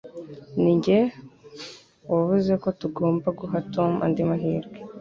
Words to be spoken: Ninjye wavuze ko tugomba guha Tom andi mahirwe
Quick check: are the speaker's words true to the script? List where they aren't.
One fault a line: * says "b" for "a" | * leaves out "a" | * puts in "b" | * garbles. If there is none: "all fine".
all fine